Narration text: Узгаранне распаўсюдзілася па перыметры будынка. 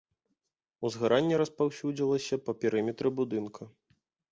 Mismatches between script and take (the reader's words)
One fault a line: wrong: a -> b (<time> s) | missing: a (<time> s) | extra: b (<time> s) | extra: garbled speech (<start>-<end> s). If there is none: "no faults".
no faults